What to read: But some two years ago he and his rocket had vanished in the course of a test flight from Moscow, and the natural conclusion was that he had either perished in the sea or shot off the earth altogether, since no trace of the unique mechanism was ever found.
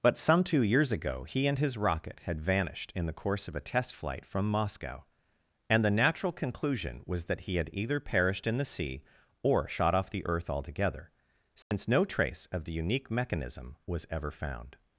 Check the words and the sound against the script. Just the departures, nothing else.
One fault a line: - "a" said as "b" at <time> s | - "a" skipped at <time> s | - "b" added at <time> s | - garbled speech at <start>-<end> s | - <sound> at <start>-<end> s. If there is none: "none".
- dropout at 11.6-11.7 s